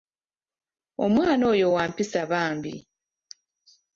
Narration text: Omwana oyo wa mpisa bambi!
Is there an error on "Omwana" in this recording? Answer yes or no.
no